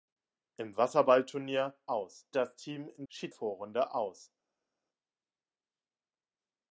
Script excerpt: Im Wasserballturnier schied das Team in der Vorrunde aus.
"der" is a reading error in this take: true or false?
true